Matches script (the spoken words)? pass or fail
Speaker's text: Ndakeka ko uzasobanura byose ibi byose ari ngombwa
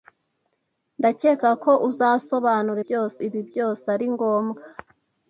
pass